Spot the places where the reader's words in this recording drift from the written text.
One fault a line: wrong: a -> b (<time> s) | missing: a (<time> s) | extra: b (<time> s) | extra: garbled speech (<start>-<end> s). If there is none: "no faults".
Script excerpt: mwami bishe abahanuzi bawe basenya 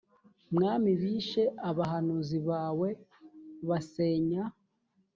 no faults